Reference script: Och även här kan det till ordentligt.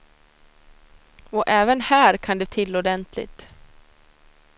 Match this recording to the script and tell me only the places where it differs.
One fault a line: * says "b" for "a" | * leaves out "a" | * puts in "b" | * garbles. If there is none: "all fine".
all fine